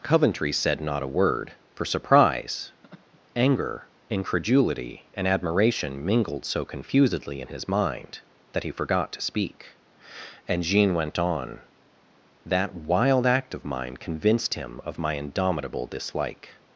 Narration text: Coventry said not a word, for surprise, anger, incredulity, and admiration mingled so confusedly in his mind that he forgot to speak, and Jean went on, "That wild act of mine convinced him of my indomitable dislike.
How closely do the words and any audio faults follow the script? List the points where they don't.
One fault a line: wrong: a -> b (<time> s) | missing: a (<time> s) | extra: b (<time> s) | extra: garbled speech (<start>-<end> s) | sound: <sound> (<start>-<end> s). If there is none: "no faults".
sound: laugh (2.8-3.2 s)